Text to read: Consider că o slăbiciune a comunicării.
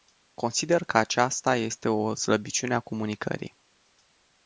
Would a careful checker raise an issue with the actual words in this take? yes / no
yes